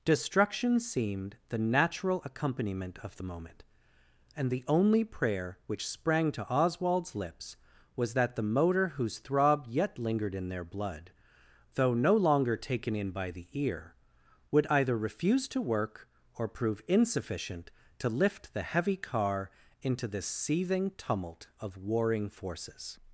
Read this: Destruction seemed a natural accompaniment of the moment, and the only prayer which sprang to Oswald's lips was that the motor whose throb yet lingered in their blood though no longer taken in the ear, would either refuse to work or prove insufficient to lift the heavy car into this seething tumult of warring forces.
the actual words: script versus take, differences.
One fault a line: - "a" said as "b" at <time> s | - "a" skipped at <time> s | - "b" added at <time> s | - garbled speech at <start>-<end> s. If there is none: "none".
- "a" said as "the" at 1.5 s
- "by" added at 13.1 s